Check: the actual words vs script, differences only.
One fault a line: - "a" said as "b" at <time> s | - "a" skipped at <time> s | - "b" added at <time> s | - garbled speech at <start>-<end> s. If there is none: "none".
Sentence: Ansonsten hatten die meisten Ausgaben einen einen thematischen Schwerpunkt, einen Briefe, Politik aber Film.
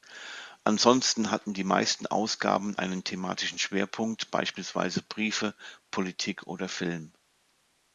- "einen" skipped at 3.0 s
- "einen" said as "beispielsweise" at 4.3 s
- "aber" said as "oder" at 6.5 s